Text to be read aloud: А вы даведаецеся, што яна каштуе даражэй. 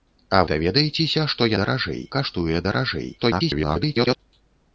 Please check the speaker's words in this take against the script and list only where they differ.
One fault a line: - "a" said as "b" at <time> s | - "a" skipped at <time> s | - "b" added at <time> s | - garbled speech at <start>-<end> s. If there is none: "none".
- "вы" skipped at 0.4 s
- "яна" said as "даражэй" at 1.6 s
- garbled speech at 3.2-4.2 s